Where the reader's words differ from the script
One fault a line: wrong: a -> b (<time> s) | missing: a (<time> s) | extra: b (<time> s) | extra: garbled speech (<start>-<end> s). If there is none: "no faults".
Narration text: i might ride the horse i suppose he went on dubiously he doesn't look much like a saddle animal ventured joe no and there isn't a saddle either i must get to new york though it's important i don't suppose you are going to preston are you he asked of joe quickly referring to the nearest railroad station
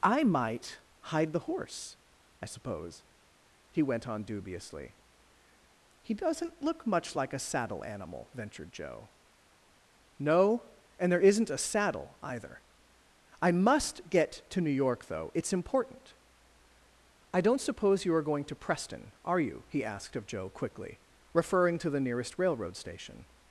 wrong: ride -> hide (1.0 s)